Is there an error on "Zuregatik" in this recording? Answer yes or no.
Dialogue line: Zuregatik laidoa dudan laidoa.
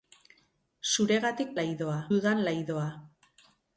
no